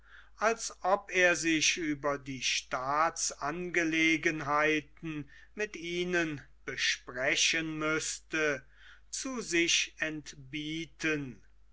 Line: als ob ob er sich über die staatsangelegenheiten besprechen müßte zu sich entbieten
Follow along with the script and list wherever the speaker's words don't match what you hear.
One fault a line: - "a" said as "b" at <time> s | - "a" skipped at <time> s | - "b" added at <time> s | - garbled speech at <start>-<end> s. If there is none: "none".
- "ob" skipped at 1.1 s
- "mit ihnen" added at 5.5 s